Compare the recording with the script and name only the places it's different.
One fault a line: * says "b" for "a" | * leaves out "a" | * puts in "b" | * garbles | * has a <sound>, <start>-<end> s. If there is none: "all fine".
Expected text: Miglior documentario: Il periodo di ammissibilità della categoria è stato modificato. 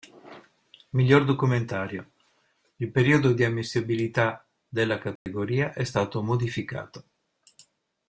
* has a dropout, 5.2-5.3 s